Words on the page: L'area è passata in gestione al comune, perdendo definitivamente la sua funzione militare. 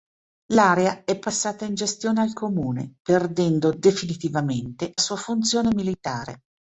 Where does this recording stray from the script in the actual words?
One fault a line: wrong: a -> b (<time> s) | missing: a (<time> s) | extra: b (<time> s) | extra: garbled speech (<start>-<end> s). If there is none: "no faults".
missing: la (4.9 s)